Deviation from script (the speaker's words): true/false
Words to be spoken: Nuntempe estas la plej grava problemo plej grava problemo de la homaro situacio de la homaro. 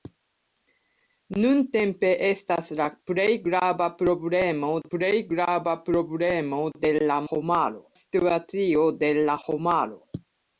false